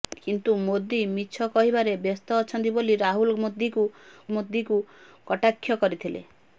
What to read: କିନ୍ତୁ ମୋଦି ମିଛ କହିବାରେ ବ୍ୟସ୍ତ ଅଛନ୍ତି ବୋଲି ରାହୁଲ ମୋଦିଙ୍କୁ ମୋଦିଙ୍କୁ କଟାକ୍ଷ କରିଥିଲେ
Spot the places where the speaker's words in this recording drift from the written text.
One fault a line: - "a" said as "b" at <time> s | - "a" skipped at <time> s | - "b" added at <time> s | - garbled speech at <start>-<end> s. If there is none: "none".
none